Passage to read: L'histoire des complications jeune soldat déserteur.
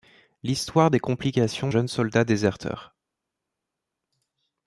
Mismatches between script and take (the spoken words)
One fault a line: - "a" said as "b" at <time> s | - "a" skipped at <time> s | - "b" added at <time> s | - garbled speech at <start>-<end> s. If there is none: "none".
none